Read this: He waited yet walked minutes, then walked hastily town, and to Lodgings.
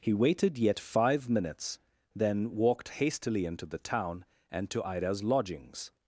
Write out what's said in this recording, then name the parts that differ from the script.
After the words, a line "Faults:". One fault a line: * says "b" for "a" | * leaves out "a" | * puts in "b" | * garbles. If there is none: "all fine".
He waited yet five minutes, then walked hastily into the town, and to Ida's lodgings.
Faults:
* says "five" for "walked"
* puts in "into the"
* puts in "Ida's"